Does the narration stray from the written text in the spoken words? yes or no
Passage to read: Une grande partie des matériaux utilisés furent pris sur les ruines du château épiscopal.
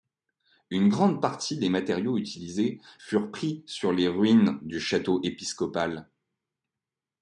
no